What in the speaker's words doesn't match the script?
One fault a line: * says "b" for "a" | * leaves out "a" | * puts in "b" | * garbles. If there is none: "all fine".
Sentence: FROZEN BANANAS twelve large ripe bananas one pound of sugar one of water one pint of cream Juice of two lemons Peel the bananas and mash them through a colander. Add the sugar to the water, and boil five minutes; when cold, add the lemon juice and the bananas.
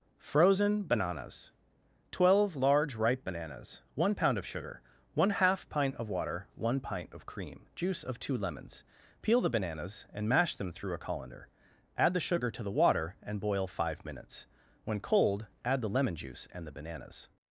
* puts in "half pint"